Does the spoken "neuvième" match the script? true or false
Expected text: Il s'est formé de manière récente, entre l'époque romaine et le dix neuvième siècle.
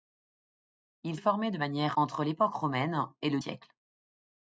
false